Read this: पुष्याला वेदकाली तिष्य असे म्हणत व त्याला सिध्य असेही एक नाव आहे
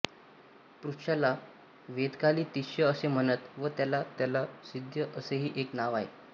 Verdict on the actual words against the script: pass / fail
fail